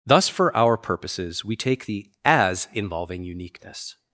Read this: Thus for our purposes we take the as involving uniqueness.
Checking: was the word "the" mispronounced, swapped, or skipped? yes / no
no